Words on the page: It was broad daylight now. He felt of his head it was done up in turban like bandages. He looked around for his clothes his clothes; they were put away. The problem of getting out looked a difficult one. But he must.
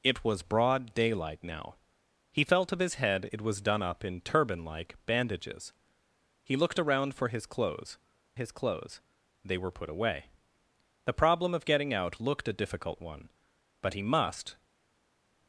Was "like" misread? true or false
false